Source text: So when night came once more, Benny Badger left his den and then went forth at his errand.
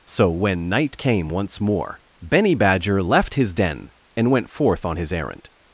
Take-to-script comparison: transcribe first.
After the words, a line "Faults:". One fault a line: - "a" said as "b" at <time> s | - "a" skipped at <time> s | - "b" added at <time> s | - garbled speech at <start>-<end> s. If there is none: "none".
So when night came once more, Benny Badger left his den and went forth on his errand.
Faults:
- "then" skipped at 4.3 s
- "at" said as "on" at 4.8 s